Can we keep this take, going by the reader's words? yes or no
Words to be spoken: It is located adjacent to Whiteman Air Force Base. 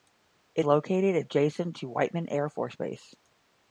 no